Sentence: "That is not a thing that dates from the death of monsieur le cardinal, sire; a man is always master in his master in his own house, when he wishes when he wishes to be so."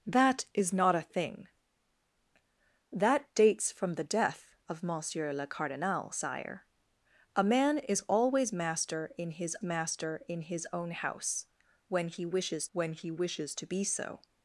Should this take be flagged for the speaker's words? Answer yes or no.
no